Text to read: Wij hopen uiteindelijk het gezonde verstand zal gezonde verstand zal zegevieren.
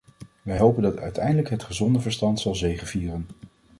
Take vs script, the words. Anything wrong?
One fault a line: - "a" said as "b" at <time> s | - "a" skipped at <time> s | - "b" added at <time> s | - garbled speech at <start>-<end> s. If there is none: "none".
- "dat" added at 0.8 s
- "gezonde verstand zal" skipped at 2.6 s